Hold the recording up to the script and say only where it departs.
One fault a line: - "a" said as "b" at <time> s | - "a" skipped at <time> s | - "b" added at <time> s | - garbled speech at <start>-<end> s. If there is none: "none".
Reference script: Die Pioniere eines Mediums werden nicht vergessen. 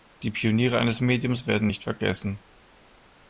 none